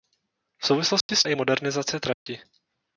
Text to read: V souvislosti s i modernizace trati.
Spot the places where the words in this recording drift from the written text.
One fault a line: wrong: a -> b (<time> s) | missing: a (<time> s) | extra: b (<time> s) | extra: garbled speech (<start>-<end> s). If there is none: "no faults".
no faults